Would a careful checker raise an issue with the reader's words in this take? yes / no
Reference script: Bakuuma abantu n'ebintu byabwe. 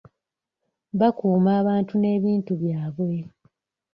no